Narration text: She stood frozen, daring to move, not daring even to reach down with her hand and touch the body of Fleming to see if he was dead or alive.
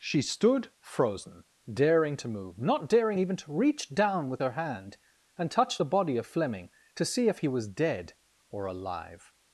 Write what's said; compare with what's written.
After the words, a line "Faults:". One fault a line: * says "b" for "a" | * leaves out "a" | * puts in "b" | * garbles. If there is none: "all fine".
She stood frozen, daring to move, not daring even to reach down with her hand and touch the body of Fleming to see if he was dead or alive.
Faults:
all fine